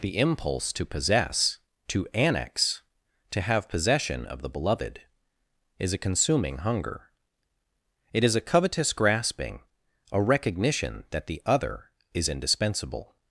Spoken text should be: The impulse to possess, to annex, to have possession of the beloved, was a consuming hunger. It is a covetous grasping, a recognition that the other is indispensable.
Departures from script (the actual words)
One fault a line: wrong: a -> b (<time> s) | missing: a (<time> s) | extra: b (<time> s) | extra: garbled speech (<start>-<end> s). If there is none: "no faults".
wrong: was -> is (5.8 s)